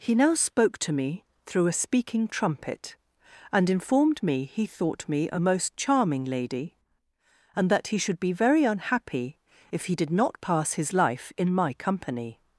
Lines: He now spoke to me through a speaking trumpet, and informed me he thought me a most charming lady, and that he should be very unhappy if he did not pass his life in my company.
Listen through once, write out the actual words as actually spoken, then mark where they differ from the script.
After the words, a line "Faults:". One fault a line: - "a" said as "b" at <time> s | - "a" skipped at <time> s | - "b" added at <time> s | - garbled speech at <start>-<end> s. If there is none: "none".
He now spoke to me through a speaking trumpet, and informed me he thought me a most charming lady, and that he should be very unhappy if he did not pass his life in my company.
Faults:
none